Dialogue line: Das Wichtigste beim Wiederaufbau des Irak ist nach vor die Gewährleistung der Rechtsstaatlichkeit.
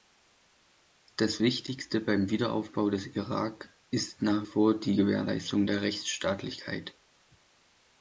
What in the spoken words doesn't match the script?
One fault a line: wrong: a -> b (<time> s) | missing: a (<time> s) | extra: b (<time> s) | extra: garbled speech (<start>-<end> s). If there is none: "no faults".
no faults